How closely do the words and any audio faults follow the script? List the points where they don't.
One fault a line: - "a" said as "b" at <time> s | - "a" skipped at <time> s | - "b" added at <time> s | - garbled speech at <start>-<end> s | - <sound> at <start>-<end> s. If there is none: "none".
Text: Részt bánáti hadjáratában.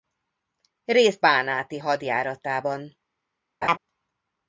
- laugh at 3.6-3.8 s